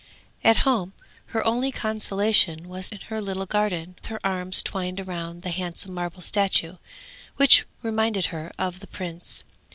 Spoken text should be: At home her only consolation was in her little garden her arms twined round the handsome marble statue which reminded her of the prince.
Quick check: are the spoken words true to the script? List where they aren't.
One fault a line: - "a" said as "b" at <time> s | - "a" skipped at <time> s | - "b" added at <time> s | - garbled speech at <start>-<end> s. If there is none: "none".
none